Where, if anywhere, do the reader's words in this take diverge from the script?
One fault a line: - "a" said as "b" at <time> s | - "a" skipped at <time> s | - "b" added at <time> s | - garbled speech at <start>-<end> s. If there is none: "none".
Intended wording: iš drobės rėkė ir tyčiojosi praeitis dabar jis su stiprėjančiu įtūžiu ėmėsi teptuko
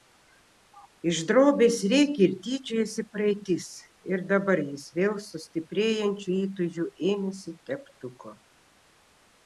- "ir" added at 4.1 s
- "vėl" added at 5.0 s